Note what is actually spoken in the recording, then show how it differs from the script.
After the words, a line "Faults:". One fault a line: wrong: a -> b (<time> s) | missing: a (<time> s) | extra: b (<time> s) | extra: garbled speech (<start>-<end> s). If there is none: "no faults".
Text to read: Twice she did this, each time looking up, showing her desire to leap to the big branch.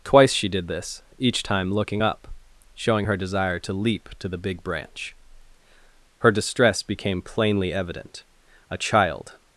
Twice she did this, each time looking up, showing her desire to leap to the big branch. Her distress became plainly evident; a child
Faults:
extra: Her distress became plainly evident a child (6.2 s)